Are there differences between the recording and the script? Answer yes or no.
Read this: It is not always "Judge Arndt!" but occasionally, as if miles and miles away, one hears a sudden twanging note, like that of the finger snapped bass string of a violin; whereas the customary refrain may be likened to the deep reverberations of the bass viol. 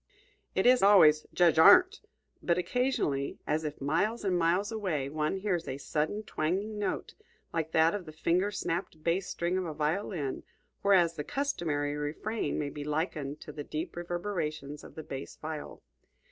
yes